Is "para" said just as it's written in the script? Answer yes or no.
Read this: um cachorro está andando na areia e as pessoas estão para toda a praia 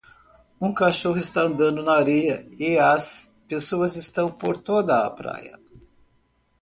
no